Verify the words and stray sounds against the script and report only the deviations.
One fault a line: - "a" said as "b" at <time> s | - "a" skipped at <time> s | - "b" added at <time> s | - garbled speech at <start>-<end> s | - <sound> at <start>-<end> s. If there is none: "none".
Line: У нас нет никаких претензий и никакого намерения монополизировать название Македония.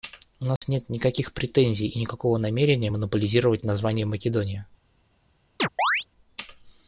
- dropout at 0.6-0.6 s
- chirp at 5.6-6.1 s